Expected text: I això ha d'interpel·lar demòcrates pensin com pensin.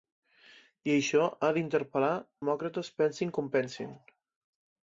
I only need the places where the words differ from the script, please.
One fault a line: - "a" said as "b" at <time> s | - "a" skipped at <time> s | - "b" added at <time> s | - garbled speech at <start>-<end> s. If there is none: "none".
none